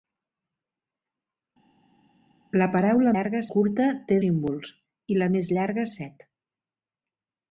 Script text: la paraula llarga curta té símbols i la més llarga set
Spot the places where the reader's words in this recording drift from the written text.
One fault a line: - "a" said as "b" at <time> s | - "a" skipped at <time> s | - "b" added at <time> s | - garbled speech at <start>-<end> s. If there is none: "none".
none